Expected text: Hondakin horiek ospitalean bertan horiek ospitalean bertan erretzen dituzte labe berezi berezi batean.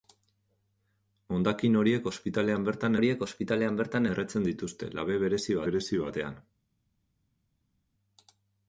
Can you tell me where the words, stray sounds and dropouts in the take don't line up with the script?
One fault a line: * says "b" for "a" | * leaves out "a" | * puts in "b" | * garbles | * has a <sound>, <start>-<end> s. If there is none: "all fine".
all fine